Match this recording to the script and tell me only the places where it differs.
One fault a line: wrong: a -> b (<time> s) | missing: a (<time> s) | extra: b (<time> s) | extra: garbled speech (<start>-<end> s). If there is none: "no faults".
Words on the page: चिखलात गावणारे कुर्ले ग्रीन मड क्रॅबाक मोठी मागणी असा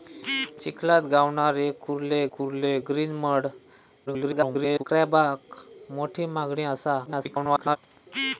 extra: कुर्ले (2.3 s)
extra: garbled speech (4.1-4.8 s)
extra: garbled speech (7.1-7.8 s)